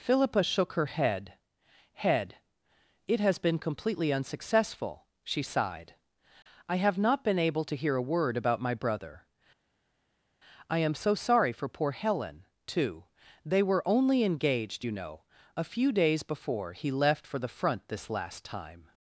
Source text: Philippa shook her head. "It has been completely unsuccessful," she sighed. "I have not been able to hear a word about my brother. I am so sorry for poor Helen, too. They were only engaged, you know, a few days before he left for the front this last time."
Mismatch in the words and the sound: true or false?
true